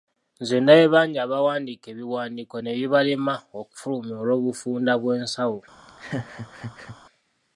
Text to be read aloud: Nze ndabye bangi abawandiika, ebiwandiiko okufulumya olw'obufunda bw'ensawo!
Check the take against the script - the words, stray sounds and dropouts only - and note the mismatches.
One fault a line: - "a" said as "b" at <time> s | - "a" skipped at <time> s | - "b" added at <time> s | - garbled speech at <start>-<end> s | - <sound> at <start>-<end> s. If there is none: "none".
- "ne bibalema" added at 2.6 s
- laugh at 5.9-7.0 s